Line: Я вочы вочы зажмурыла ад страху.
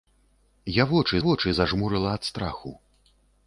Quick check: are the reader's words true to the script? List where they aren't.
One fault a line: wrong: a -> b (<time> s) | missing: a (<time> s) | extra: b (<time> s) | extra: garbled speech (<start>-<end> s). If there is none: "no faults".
no faults